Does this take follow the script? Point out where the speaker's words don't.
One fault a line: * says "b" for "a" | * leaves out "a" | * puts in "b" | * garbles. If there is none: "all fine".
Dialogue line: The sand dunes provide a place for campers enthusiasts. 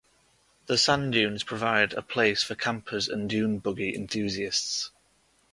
* puts in "and dune buggy"